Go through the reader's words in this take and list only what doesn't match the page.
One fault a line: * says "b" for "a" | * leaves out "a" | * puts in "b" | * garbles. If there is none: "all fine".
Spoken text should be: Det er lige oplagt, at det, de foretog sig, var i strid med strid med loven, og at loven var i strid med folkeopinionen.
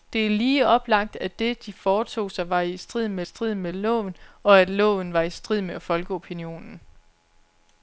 all fine